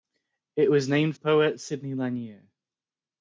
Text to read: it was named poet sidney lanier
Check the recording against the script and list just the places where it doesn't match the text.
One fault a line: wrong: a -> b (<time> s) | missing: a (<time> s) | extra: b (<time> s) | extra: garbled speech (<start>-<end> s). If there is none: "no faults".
no faults